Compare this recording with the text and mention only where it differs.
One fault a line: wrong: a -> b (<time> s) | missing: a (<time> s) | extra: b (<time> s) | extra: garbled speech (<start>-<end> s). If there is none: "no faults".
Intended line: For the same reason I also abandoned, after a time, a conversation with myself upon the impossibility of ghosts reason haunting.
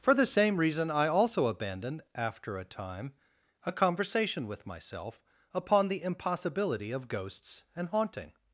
wrong: reason -> and (7.8 s)